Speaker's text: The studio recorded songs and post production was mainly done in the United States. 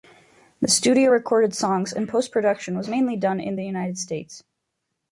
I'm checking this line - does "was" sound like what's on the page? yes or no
yes